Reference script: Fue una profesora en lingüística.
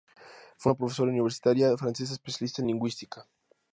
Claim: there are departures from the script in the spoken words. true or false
true